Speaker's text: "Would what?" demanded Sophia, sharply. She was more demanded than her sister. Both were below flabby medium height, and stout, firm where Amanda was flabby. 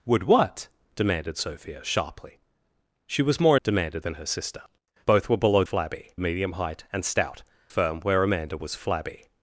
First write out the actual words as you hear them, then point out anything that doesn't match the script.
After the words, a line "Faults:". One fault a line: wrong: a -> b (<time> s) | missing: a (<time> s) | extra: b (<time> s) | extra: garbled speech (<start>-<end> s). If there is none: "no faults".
"Would what?" demanded Sophia, sharply. She was more demanded than her sister. Both were below flabby medium height, and stout, firm where Amanda was flabby.
Faults:
no faults